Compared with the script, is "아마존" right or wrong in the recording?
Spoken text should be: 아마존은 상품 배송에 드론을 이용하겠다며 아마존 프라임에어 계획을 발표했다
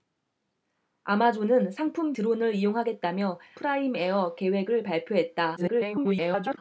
wrong